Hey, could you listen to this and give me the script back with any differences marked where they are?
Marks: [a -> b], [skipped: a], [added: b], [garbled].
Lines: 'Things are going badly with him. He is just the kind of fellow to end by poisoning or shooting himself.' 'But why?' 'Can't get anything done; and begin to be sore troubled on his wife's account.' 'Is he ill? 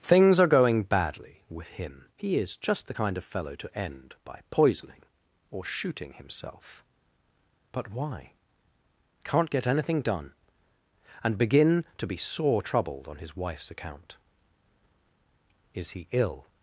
'Things are going badly with him. He is just the kind of fellow to end by poisoning or shooting himself.' 'But why?' 'Can't get anything done; and begin to be sore troubled on his wife's account.' 'Is he ill?